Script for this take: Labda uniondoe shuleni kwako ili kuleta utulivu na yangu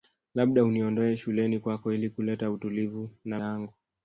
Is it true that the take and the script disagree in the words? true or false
false